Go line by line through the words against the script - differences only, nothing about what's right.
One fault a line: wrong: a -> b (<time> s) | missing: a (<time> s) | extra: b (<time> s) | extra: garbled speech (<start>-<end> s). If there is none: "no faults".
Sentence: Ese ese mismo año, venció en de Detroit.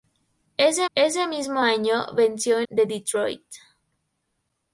no faults